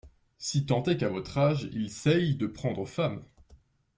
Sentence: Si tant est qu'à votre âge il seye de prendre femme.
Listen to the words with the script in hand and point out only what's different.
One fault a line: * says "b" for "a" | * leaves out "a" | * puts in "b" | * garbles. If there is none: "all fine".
all fine